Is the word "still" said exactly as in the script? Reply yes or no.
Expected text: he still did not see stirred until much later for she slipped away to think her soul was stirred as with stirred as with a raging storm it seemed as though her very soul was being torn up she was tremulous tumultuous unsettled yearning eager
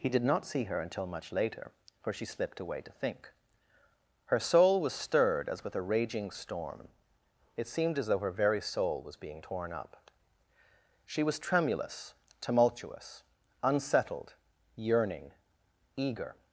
no